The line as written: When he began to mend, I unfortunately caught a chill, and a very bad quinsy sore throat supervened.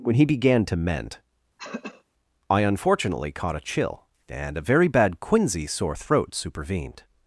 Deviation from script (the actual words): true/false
false